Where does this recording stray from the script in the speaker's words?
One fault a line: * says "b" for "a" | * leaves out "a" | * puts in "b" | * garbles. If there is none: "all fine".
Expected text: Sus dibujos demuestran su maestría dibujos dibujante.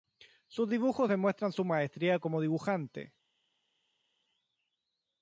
* says "como" for "dibujos"